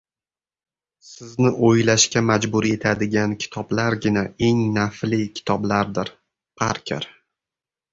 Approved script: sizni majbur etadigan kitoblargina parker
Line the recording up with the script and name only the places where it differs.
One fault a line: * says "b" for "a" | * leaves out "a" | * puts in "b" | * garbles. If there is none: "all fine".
* puts in "o‘ylashga"
* puts in "eng nafli kitoblardir"